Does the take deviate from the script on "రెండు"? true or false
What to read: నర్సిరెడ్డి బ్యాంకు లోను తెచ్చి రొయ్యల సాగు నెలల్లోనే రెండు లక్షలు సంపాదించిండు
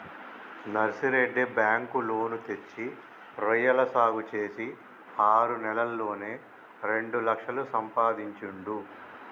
false